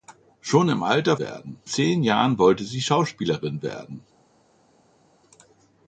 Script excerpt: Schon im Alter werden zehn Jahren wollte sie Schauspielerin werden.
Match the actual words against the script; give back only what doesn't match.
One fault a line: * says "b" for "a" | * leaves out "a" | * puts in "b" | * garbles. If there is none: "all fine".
all fine